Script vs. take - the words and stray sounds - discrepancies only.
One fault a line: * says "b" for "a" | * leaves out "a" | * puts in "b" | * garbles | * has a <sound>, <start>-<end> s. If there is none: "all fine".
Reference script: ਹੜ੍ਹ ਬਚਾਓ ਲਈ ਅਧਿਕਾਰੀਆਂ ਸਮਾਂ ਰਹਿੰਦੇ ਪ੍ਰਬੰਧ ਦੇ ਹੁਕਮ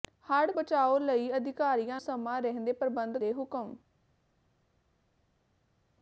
all fine